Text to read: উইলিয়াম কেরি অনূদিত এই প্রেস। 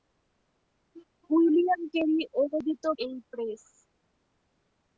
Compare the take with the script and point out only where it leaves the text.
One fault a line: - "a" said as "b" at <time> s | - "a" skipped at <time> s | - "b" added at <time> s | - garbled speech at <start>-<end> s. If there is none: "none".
none